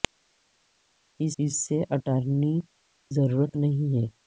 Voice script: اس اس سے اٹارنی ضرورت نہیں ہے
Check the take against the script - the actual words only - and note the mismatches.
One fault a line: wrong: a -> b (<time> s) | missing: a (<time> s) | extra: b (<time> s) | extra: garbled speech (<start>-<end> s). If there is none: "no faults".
no faults